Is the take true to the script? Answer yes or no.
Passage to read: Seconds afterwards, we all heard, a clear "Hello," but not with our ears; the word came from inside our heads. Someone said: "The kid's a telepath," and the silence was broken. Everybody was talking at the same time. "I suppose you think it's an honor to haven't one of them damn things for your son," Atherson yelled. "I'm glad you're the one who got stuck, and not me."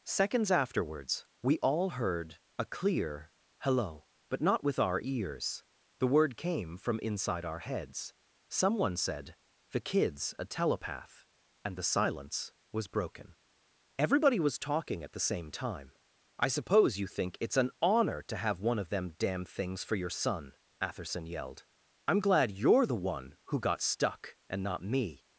no